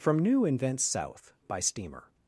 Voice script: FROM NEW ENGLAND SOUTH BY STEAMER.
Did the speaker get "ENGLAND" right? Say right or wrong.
wrong